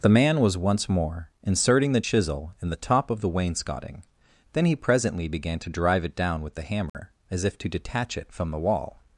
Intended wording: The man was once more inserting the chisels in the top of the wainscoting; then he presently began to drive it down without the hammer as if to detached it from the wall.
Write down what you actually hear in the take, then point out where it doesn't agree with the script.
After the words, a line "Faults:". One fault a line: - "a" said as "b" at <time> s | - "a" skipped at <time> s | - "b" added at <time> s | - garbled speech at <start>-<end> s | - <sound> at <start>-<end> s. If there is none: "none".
The man was once more inserting the chisel in the top of the wainscoting; then he presently began to drive it down with the hammer as if to detach it from the wall.
Faults:
- "chisels" said as "chisel" at 2.0 s
- "without" said as "with" at 6.4 s
- dropout at 6.9-6.9 s
- "detached" said as "detach" at 7.7 s